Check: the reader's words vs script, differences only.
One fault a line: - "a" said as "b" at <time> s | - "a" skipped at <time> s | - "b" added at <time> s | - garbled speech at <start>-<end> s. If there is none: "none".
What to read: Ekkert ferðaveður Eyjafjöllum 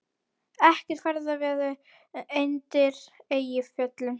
- "undir" added at 2.4 s